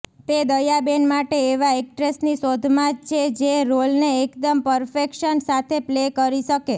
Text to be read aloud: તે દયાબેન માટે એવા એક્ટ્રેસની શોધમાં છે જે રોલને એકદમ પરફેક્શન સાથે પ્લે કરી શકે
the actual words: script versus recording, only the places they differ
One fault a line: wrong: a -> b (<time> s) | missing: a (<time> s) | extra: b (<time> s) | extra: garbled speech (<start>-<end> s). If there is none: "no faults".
no faults